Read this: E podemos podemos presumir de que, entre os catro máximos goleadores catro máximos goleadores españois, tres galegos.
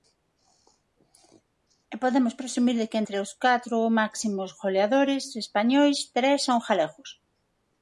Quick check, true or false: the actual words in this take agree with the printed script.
false